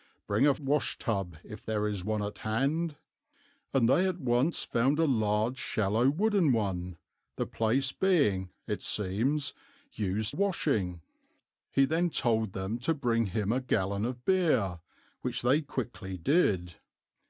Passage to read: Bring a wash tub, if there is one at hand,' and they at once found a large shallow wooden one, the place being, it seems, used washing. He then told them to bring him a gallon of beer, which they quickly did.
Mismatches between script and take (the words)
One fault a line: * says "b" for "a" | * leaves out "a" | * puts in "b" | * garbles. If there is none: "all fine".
all fine